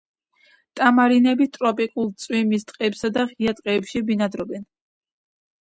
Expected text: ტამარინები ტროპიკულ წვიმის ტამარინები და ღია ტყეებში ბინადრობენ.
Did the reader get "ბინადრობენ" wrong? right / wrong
right